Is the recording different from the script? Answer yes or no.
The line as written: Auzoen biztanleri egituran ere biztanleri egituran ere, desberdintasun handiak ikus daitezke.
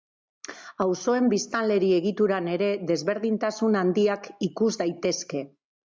yes